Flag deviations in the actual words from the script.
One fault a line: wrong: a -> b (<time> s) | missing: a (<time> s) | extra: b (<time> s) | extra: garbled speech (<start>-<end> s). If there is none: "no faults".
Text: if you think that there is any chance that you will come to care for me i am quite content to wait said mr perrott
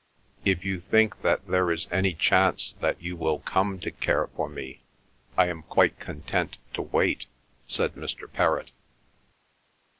no faults